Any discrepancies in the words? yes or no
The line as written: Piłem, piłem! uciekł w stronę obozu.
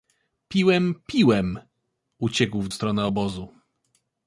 no